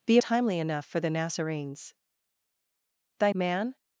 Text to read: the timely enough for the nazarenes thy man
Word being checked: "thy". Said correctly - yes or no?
yes